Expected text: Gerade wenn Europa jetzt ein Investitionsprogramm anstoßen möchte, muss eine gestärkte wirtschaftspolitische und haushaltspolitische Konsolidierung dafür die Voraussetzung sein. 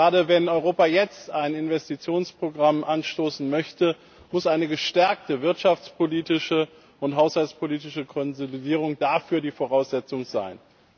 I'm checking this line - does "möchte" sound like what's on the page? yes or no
yes